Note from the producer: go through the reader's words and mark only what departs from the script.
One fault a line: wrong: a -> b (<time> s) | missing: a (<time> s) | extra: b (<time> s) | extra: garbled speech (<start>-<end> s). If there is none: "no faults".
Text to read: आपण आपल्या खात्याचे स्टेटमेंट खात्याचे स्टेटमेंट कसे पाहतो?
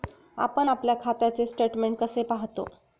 missing: खात्याचे स्टेटमेंट (2.0 s)